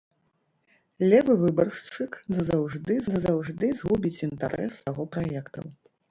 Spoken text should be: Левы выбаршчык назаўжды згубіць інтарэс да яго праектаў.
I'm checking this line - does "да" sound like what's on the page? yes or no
no